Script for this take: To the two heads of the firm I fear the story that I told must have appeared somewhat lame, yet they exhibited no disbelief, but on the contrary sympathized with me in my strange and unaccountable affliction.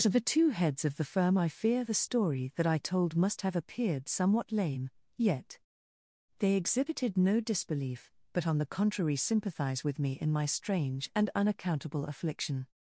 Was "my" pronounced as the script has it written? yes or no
yes